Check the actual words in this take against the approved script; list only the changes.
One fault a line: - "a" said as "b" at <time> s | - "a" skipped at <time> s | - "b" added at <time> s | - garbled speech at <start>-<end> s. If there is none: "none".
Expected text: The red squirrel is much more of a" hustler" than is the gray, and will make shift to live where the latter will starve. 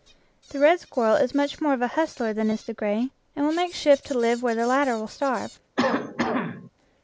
none